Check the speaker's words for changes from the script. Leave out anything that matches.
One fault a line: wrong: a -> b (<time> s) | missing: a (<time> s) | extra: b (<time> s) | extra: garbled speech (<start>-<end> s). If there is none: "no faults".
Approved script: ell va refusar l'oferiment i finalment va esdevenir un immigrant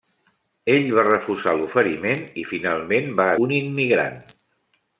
missing: esdevenir (3.3 s)